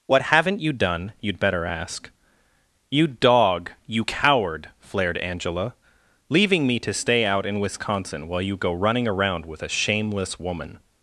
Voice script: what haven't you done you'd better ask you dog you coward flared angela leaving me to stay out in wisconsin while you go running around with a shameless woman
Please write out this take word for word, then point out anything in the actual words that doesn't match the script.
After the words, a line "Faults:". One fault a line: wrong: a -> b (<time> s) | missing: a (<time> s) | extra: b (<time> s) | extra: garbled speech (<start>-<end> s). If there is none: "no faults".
what haven't you done you'd better ask you dog you coward flared angela leaving me to stay out in wisconsin while you go running around with a shameless woman
Faults:
no faults